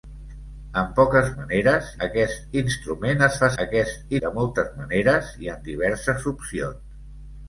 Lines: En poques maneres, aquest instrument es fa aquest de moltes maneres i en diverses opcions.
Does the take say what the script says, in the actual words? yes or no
yes